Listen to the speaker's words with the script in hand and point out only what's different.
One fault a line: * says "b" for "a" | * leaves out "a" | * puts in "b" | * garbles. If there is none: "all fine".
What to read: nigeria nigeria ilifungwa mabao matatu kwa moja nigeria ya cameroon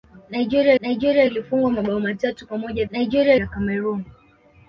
all fine